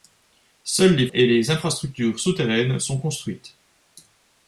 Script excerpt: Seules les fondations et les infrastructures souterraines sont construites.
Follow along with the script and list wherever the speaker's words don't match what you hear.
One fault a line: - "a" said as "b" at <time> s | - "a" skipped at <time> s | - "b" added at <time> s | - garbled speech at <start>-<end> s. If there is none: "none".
- "fondations" skipped at 1.1 s